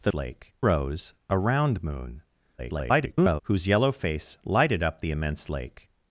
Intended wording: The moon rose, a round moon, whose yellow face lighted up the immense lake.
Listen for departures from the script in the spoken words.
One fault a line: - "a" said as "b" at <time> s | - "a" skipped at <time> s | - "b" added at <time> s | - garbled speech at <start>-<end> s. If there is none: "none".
- "moon" said as "lake" at 0.1 s
- garbled speech at 2.6-3.4 s